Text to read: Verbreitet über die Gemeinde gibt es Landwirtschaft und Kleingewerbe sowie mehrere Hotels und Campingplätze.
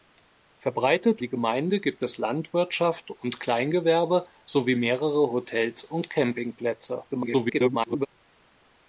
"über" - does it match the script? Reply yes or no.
no